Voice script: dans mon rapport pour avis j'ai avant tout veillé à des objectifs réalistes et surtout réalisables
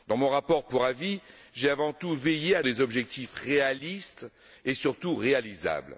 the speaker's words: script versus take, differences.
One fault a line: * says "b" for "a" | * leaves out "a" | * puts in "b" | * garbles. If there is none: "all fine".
all fine